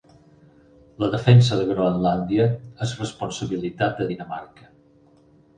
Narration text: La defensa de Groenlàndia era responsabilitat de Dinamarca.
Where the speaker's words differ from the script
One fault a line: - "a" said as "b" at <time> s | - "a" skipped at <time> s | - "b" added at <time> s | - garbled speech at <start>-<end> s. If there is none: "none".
- "era" said as "és" at 2.9 s